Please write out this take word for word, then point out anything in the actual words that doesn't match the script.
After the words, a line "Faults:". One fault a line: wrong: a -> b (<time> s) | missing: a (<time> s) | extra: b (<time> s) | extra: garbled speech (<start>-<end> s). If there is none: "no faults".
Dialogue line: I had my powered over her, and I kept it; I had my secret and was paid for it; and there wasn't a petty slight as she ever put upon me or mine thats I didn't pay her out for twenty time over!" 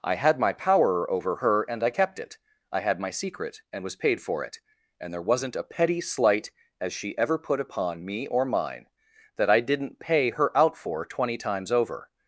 I had my power over her, and I kept it; I had my secret and was paid for it; and there wasn't a petty slight as she ever put upon me or mine that I didn't pay her out for twenty times over!"
Faults:
wrong: powered -> power (0.5 s)
wrong: thats -> that (9.4 s)
wrong: time -> times (11.4 s)